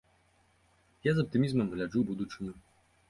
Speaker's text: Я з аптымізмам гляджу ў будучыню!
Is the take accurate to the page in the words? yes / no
yes